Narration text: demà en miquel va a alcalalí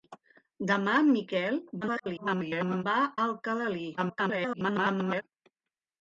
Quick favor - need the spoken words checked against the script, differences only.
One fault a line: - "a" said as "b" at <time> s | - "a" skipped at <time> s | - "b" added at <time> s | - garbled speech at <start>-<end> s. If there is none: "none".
- garbled speech at 1.8-2.8 s
- garbled speech at 4.0-5.2 s